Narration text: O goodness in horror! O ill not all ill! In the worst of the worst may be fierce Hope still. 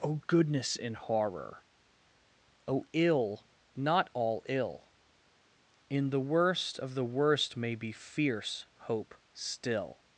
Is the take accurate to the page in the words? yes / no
yes